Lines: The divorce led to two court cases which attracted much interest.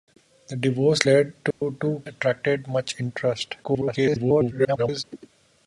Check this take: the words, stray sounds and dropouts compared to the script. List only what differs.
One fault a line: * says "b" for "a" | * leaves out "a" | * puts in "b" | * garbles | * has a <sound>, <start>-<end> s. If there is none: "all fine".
* has a dropout, 1.5-1.6 s
* leaves out "court cases which"
* garbles